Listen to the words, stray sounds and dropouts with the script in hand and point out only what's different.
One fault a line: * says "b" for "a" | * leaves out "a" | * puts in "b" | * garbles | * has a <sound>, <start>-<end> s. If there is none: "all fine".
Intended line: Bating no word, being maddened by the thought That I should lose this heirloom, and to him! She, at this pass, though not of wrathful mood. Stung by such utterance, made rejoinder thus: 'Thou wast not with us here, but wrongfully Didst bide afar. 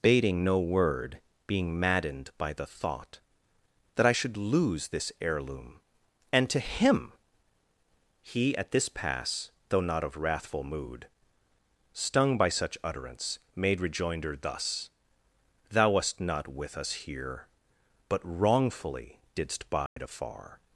* says "He" for "She"
* has a dropout, 19.9-20.0 s